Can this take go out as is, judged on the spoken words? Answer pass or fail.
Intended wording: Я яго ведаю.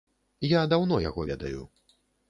fail